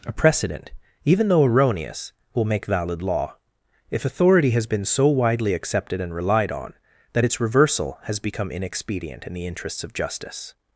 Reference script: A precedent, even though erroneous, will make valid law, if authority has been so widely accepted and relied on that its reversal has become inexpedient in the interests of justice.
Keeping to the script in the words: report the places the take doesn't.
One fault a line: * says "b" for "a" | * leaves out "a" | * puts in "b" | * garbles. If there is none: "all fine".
all fine